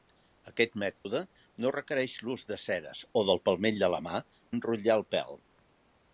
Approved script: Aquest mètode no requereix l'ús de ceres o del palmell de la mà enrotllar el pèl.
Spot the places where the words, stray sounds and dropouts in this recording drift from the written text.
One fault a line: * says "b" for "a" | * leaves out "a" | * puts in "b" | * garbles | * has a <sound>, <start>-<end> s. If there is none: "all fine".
* has a dropout, 1.0-1.1 s